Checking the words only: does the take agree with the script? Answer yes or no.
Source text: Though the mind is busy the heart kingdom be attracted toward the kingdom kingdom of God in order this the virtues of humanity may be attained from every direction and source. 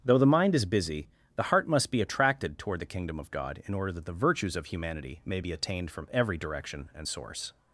no